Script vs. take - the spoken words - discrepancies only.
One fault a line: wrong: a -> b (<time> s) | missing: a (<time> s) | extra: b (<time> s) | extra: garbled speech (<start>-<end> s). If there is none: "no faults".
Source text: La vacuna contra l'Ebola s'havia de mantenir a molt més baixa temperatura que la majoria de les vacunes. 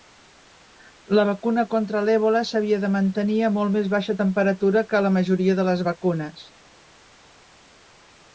no faults